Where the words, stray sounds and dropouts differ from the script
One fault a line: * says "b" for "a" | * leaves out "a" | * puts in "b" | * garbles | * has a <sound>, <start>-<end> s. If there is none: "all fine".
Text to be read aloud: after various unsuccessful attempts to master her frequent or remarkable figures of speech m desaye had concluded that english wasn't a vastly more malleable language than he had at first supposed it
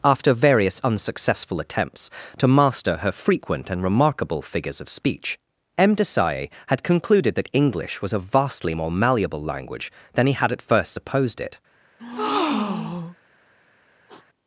* says "and" for "or"
* says "was" for "wasn't"
* has a breath, 12.0-13.2 s
* has a sniff, 14.1-14.3 s